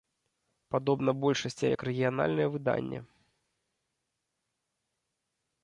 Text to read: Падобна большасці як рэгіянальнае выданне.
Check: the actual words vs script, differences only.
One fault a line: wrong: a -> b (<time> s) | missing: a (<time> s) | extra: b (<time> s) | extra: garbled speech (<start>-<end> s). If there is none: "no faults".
no faults